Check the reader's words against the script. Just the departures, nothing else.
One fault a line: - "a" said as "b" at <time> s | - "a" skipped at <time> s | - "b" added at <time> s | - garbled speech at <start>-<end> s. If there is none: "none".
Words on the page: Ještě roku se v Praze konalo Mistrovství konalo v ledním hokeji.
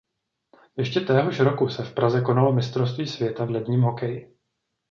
- "téhož" added at 1.0 s
- "konalo" said as "světa" at 3.1 s